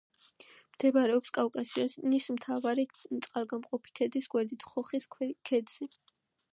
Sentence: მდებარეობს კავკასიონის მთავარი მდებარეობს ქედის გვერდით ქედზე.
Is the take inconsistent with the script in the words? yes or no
yes